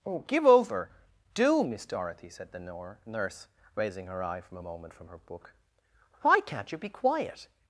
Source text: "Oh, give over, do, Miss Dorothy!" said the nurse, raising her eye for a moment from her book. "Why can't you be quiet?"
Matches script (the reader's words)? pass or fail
fail